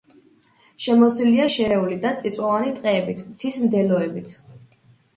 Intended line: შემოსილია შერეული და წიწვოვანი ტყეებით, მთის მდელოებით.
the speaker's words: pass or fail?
pass